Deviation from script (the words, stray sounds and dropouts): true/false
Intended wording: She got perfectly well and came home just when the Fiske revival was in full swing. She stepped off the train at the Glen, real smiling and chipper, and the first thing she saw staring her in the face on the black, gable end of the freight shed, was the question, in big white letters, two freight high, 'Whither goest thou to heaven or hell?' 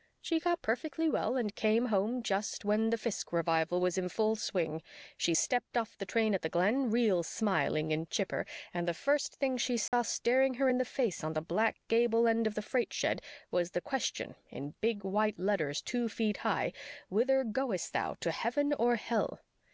true